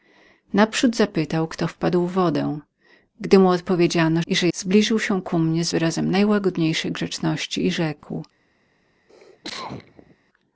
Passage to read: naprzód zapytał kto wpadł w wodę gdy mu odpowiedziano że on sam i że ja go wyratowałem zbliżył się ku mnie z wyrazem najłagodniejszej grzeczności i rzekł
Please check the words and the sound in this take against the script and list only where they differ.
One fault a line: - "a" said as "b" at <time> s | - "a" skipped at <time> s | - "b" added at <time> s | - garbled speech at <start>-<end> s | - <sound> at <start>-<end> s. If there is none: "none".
- "że on sam" skipped at 4.2 s
- "ja go wyratowałem" skipped at 4.5 s
- cough at 9.1-10.2 s